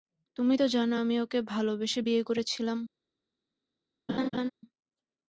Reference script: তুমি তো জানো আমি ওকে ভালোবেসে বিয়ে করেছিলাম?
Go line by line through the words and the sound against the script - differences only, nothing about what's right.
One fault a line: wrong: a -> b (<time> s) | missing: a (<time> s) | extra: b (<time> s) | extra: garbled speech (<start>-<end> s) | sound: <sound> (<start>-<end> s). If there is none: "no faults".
sound: laugh (4.1-4.5 s)